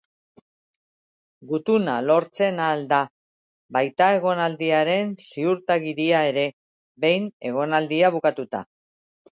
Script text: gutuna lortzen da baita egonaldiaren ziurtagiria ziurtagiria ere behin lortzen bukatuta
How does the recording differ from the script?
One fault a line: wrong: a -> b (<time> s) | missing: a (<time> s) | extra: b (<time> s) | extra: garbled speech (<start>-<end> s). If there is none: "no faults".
extra: ahal (2.7 s)
missing: ziurtagiria (6.3 s)
wrong: lortzen -> egonaldia (7.5 s)